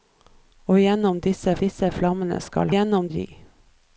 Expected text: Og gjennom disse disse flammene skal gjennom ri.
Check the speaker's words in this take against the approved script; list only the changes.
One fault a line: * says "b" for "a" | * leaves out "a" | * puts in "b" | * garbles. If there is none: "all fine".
all fine